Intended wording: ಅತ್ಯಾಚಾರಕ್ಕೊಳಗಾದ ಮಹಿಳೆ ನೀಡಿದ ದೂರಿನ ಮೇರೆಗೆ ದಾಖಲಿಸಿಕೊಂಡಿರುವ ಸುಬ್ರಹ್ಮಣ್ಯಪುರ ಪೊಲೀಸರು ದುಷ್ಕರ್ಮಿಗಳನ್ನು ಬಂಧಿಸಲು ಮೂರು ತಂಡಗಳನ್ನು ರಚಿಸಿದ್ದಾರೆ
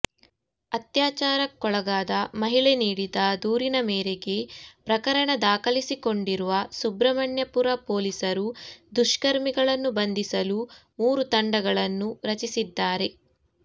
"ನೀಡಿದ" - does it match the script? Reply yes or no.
yes